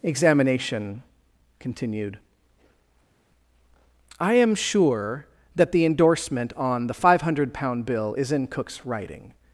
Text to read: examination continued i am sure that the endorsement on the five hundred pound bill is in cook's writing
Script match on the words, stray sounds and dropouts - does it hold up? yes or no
yes